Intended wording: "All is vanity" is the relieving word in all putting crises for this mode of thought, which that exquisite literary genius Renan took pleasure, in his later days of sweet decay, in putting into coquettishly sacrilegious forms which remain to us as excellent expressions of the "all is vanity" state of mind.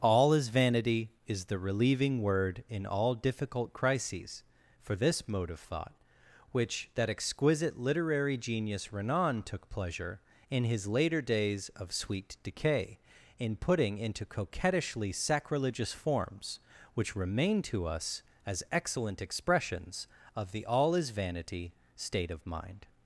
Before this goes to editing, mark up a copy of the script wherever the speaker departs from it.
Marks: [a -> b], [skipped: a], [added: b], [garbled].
"All is vanity" is the relieving word in all [putting -> difficult] crises for this mode of thought, which that exquisite literary genius Renan took pleasure, in his later days of sweet decay, in putting into coquettishly sacrilegious forms which remain to us as excellent expressions of the "all is vanity" state of mind.